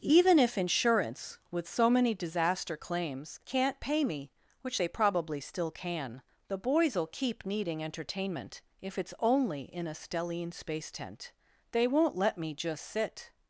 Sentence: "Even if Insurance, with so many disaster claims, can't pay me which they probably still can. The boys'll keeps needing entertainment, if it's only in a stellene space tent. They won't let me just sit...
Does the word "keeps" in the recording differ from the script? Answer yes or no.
yes